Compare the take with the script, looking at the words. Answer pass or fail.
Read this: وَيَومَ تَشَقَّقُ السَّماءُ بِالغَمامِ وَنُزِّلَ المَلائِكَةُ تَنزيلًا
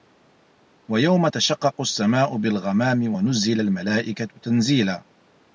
pass